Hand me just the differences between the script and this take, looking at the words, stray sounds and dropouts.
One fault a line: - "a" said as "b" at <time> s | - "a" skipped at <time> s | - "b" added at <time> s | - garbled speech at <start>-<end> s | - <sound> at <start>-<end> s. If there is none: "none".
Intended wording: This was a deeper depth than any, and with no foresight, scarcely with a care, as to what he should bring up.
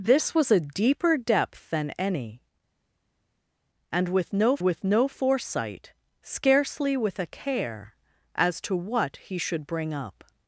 - "with no" added at 4.6 s